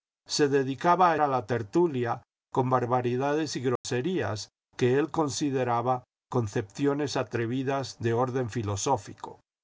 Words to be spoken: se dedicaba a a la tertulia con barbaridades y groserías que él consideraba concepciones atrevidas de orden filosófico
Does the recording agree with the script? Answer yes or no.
yes